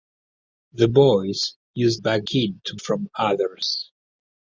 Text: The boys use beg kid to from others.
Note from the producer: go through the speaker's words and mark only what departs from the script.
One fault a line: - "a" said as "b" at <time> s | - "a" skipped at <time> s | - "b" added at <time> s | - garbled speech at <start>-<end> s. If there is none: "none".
none